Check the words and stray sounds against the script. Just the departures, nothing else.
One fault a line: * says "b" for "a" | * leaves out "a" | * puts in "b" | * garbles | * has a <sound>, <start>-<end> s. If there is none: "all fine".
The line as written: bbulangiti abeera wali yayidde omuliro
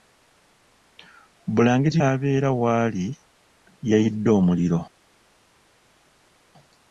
all fine